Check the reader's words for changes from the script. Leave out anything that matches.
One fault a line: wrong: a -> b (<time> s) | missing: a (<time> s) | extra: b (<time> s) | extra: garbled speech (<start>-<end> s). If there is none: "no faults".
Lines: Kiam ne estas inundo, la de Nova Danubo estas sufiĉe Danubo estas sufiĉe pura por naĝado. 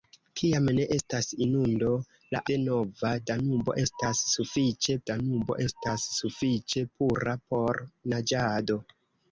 no faults